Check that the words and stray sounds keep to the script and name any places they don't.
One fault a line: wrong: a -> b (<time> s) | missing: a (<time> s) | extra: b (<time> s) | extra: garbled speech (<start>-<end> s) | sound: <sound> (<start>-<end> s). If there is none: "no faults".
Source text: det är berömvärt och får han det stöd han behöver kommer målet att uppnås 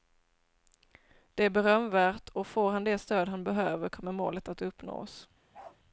sound: bark (5.5-5.8 s)